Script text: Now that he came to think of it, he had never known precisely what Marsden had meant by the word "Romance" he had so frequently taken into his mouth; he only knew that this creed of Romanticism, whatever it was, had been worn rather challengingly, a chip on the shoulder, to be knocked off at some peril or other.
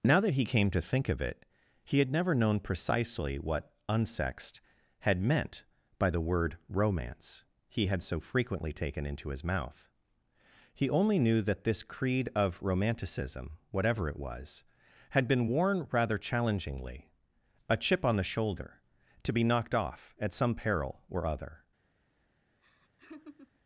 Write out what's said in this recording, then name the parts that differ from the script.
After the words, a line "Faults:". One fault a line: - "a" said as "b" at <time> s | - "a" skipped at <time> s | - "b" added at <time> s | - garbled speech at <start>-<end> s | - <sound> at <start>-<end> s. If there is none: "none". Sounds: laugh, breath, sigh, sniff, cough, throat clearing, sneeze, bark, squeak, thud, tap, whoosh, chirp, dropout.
Now that he came to think of it, he had never known precisely what Unsexed had meant by the word "Romance" he had so frequently taken into his mouth; he only knew that this creed of Romanticism, whatever it was, had been worn rather challengingly, a chip on the shoulder, to be knocked off at some peril or other.
Faults:
- "Marsden" said as "Unsexed" at 3.9 s
- laugh at 22.6-23.6 s